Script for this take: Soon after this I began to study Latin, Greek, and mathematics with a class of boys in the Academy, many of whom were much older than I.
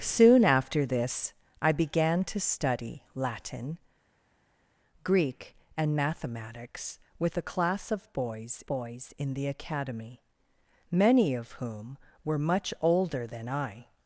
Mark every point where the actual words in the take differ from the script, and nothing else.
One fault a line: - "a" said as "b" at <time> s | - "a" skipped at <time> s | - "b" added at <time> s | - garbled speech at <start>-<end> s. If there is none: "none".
- "boys" added at 8.7 s